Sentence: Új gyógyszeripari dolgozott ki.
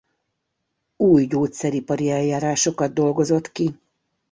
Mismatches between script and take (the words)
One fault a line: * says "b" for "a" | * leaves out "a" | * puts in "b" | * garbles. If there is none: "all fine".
* puts in "eljárásokat"